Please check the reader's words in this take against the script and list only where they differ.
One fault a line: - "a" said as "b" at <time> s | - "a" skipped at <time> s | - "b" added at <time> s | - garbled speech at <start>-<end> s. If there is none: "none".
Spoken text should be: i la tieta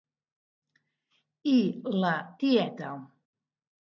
none